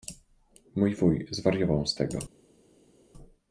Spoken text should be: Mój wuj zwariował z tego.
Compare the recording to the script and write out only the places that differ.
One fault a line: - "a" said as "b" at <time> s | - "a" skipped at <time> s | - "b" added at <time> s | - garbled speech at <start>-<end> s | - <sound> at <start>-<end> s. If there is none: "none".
none